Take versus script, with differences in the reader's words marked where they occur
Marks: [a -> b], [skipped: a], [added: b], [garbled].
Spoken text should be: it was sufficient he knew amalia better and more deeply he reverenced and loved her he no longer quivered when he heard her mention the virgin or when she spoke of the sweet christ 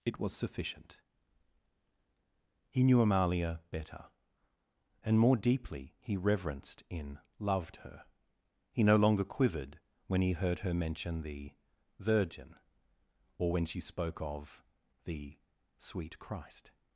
it was sufficient he knew amalia better and more deeply he reverenced [and -> in] loved her he no longer quivered when he heard her mention the virgin or when she spoke of the sweet christ